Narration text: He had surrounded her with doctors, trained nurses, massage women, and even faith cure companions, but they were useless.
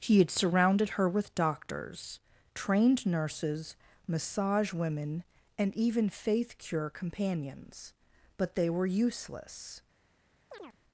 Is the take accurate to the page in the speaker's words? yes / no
yes